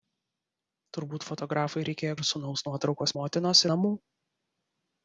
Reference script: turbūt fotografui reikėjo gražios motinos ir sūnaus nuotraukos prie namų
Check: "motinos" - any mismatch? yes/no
yes